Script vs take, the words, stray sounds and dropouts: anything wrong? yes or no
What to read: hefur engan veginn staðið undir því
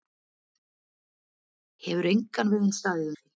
yes